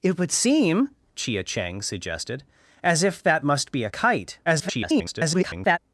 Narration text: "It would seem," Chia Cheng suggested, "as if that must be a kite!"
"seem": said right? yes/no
yes